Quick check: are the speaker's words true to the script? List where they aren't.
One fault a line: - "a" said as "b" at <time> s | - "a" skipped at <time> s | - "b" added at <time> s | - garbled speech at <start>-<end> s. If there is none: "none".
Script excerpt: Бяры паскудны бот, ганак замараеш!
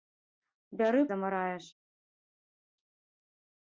- "паскудны бот ганак" skipped at 1.0 s